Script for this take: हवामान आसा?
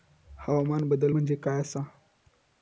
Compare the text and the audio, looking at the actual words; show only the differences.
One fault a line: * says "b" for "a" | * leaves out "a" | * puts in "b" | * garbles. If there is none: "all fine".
* puts in "बदल म्हणजे काय"